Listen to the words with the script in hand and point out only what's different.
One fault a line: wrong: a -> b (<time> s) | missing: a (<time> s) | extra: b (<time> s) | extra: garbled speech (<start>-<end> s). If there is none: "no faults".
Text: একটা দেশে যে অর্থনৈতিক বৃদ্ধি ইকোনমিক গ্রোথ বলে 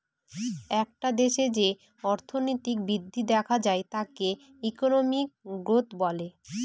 extra: দেখা যায় তাকে (3.3 s)